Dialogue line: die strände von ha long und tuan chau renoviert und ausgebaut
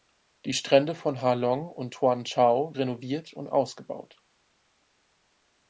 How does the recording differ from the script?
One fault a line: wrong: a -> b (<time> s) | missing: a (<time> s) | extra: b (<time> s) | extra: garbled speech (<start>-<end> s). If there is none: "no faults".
no faults